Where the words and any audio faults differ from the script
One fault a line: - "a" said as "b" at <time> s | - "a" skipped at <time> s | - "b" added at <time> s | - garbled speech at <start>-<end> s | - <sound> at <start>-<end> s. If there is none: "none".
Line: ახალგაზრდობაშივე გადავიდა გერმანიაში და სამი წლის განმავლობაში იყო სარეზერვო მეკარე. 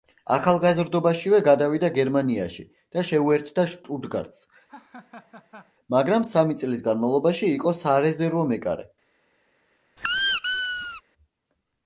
- "შეუერთდა შტუტგარტს მაგრამ" added at 3.1 s
- laugh at 4.7-5.7 s
- squeak at 10.0-11.0 s